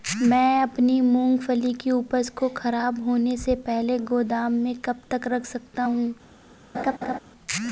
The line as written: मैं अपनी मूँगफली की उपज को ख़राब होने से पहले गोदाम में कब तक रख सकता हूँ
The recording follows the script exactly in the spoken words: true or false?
true